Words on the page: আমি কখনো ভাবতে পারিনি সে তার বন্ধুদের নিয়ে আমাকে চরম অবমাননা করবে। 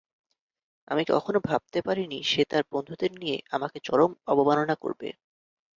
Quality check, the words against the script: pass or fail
pass